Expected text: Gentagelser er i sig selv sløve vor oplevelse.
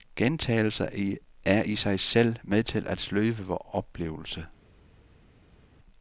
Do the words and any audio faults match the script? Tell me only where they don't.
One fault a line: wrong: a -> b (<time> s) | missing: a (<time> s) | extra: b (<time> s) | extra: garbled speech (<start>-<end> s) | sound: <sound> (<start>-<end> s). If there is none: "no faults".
extra: med til at (2.4 s)